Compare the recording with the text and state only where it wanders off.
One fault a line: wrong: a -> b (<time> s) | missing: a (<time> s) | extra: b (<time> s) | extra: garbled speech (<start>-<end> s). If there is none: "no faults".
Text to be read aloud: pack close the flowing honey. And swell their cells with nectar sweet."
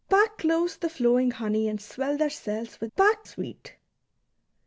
wrong: nectar -> pack (3.0 s)